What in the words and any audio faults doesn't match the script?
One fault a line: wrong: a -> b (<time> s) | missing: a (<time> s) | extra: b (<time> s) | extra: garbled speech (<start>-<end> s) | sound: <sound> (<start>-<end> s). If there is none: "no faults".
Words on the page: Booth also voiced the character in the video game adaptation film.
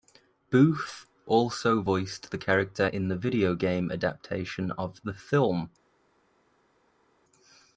extra: of the (4.7 s)